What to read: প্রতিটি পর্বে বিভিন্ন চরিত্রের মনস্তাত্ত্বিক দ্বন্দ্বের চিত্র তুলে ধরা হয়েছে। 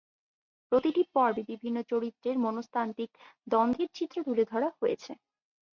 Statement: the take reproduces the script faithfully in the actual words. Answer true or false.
true